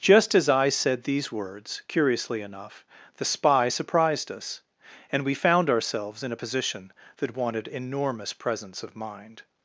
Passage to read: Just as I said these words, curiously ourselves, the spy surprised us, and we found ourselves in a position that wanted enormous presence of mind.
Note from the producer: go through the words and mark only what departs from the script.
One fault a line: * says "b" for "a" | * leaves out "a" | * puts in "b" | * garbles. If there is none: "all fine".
* says "enough" for "ourselves"